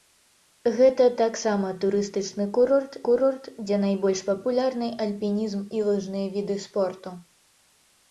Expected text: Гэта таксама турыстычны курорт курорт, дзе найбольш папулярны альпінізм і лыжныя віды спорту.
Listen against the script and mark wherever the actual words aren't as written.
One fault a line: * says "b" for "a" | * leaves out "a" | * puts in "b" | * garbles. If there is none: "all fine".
all fine